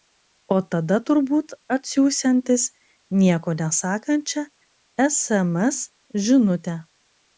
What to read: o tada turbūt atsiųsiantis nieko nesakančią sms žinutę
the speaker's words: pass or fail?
pass